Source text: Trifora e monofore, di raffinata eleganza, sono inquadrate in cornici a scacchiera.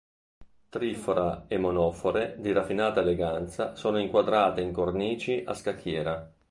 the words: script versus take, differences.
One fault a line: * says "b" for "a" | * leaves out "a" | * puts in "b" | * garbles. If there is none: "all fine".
all fine